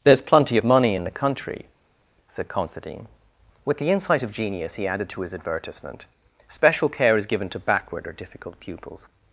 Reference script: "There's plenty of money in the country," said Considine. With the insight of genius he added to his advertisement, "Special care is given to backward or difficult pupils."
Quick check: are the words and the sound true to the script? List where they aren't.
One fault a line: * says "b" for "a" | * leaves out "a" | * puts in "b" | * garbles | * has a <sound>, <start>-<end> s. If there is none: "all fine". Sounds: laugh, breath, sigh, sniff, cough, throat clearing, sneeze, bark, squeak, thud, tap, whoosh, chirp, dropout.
all fine